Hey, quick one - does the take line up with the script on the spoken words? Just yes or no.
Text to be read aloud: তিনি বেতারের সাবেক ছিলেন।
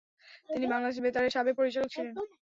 no